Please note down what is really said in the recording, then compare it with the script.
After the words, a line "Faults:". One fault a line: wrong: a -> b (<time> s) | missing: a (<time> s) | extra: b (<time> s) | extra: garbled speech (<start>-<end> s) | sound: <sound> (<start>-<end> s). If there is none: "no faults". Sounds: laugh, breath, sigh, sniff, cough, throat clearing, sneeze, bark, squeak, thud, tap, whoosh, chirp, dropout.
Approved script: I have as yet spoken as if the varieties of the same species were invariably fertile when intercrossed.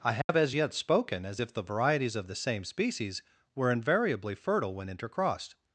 I have as yet spoken as if the varieties of the same species were invariably fertile when intercrossed.
Faults:
sound: dropout (0.2-0.3 s)